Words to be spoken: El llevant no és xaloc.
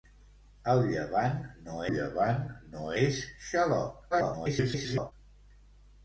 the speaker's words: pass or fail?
fail